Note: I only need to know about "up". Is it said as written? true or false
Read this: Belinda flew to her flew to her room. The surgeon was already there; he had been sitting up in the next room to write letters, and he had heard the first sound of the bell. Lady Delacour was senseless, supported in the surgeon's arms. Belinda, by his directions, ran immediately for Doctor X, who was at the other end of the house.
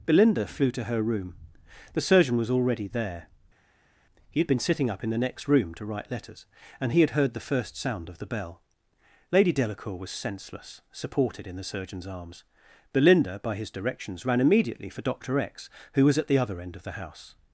true